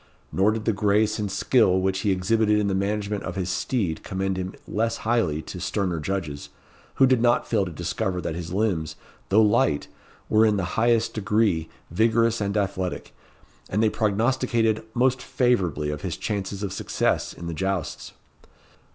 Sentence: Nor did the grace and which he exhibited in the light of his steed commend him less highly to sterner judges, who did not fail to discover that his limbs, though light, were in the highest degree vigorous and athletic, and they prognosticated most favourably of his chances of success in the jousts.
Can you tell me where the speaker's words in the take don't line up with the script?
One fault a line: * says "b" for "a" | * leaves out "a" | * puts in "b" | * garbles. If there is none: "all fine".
* puts in "skill"
* says "management" for "light"